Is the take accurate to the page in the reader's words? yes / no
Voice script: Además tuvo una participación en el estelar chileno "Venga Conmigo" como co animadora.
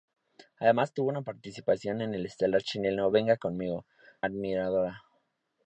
no